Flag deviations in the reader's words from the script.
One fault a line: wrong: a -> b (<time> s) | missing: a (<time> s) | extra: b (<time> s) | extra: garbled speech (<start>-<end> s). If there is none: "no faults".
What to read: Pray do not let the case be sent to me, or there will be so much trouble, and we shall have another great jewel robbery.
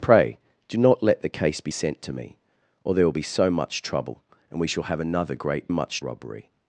wrong: jewel -> much (5.7 s)